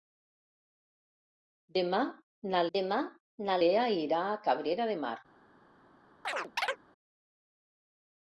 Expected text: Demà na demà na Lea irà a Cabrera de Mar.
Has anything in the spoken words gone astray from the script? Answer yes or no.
no